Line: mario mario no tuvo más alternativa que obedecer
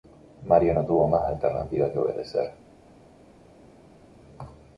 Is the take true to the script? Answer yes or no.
no